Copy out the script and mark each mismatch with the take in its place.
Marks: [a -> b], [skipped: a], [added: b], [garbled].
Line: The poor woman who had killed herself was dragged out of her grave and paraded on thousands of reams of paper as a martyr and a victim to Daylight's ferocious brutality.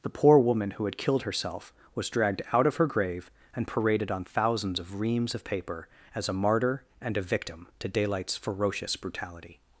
The poor woman who had killed herself was dragged out of her grave and paraded on thousands of reams of paper as a martyr and a victim to Daylight's ferocious brutality.